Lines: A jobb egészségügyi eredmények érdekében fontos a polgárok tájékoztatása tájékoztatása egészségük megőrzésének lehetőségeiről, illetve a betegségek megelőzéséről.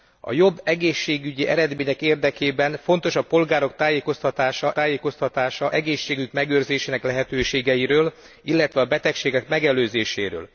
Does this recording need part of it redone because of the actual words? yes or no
no